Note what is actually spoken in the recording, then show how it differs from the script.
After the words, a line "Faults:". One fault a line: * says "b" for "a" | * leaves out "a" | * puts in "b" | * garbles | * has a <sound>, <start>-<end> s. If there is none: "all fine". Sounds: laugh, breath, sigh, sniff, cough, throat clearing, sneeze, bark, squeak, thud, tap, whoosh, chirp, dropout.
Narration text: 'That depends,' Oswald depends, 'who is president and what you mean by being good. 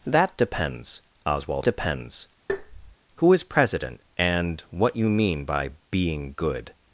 'That depends,' Oswald depends, 'who is president and what you mean by being good.
Faults:
* has a tap, 2.5-3.0 s